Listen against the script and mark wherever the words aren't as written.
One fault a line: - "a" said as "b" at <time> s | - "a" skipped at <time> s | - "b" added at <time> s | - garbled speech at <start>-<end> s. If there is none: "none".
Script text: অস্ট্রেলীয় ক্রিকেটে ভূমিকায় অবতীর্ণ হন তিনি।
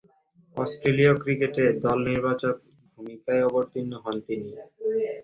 none